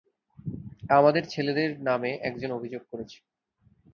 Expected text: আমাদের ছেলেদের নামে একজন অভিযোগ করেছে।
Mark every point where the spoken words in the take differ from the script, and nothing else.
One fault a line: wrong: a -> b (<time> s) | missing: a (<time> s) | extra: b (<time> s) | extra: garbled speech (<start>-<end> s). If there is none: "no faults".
no faults